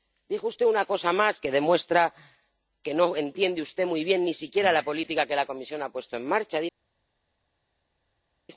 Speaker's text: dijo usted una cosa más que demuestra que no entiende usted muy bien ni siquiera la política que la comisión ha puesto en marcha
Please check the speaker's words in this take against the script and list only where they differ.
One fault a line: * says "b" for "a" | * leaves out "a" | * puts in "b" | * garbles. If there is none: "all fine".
all fine